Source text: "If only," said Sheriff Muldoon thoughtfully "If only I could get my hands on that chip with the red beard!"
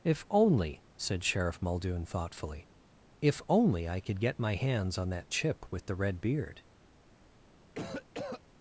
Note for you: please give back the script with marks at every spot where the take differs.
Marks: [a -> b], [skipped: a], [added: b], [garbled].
"If only," said Sheriff Muldoon thoughtfully "If only I could get my hands on that chip with the red beard!"